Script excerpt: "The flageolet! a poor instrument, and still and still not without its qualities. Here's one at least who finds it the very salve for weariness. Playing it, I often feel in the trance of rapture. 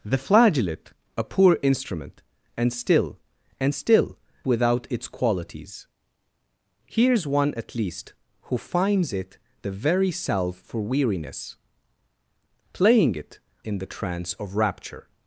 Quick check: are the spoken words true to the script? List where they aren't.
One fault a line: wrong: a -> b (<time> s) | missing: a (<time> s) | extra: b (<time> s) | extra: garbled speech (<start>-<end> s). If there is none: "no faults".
missing: not (4.2 s)
missing: I often feel (13.4 s)